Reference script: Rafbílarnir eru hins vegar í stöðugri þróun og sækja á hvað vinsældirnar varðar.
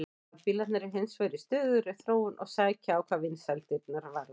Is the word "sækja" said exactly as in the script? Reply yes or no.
yes